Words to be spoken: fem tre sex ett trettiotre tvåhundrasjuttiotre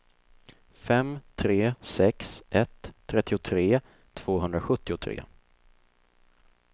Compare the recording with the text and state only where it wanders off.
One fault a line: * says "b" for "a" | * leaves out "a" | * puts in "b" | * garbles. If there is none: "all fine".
all fine